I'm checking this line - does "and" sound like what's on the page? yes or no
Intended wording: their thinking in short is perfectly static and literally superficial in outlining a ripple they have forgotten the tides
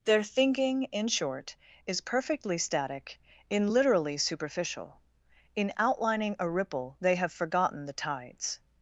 no